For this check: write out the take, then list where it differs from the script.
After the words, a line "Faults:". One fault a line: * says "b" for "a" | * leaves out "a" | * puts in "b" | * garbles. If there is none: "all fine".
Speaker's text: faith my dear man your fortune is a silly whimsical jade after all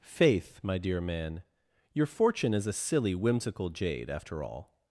faith my dear man your fortune is a silly whimsical jade after all
Faults:
all fine